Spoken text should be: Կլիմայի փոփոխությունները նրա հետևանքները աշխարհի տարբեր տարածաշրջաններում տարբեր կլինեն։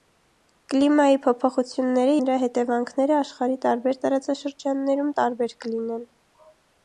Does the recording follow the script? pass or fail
pass